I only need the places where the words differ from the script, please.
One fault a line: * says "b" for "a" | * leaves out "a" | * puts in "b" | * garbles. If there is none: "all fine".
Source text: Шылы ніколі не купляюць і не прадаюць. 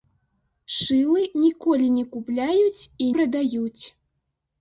* leaves out "не"